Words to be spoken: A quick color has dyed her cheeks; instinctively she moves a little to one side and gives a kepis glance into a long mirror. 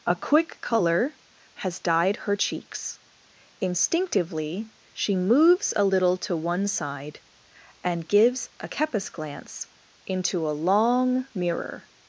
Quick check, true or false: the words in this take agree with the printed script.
true